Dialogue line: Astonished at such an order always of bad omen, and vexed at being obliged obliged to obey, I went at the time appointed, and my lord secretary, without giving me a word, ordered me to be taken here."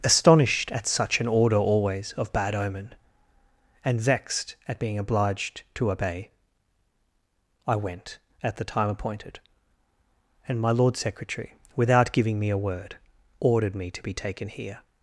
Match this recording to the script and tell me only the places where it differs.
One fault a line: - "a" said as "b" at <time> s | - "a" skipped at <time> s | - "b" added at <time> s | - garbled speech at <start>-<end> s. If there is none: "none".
- "obliged" skipped at 5.6 s